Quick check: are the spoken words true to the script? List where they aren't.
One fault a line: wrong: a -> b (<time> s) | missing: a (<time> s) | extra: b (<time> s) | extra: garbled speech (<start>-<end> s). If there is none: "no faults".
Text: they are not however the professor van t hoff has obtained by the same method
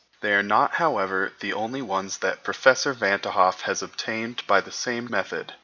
extra: only ones that (1.5 s)